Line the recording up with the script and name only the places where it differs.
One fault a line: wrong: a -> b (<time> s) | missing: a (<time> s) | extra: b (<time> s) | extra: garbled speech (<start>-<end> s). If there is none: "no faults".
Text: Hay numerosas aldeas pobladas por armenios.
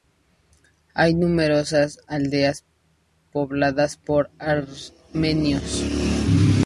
no faults